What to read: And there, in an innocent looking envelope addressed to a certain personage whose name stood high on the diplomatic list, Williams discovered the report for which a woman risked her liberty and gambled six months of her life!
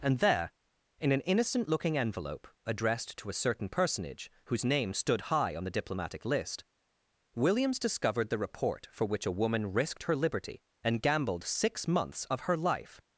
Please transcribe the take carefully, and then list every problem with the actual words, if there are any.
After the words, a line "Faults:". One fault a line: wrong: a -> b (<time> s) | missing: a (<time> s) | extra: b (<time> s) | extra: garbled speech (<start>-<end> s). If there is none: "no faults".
And there, in an innocent looking envelope addressed to a certain personage whose name stood high on the diplomatic list, Williams discovered the report for which a woman risked her liberty and gambled six months of her life!
Faults:
no faults